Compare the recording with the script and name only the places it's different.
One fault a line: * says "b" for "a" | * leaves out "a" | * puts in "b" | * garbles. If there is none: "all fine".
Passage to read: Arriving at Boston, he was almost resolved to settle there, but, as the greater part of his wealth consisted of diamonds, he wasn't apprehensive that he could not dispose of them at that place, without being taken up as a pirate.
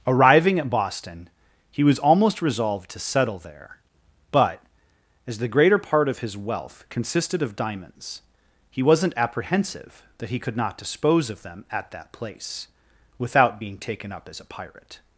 all fine